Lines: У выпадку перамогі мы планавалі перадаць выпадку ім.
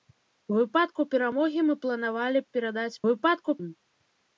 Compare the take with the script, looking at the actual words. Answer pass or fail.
pass